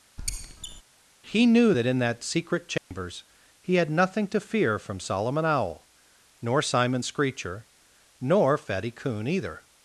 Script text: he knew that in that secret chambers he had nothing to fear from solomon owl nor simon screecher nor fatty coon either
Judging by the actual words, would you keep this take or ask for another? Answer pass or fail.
pass